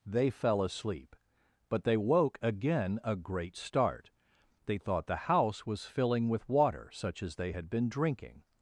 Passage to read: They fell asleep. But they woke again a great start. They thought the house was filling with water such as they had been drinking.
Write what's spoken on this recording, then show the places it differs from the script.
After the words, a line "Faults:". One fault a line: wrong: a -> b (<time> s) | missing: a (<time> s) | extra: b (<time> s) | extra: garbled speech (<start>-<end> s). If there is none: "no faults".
They fell asleep. But they woke again a great start. They thought the house was filling with water such as they had been drinking.
Faults:
no faults